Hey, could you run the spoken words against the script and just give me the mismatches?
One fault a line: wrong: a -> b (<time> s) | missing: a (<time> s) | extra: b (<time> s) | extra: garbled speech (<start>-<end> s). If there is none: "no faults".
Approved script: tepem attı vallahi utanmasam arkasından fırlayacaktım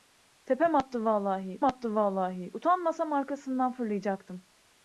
extra: attı vallahi (1.6 s)